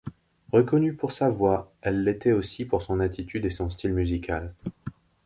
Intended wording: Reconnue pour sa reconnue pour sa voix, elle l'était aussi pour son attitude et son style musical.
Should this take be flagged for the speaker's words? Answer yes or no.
yes